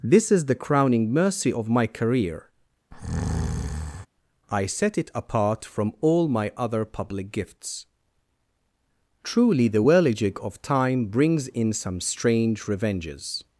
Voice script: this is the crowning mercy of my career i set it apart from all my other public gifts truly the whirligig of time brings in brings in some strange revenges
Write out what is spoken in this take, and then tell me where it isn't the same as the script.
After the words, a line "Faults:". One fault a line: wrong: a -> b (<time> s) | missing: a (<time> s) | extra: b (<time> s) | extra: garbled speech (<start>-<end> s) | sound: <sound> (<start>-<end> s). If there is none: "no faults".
this is the crowning mercy of my career i set it apart from all my other public gifts truly the whirligig of time brings in some strange revenges
Faults:
sound: breath (2.9-4.1 s)
missing: brings in (11.7 s)